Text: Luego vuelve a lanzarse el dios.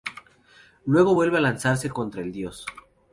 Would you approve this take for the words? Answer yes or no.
no